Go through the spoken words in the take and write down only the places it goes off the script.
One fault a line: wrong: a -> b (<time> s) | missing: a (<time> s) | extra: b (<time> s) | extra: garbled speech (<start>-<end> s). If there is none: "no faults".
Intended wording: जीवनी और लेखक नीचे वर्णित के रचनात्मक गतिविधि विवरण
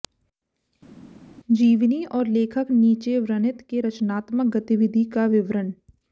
extra: का (5.1 s)